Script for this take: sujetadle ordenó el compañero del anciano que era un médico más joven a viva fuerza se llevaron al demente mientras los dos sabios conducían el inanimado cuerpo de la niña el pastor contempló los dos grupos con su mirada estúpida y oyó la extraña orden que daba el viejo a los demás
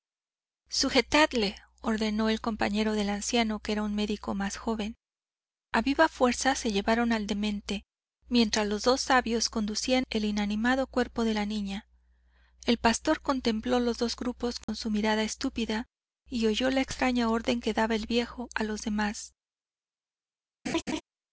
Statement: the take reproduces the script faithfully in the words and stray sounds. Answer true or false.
false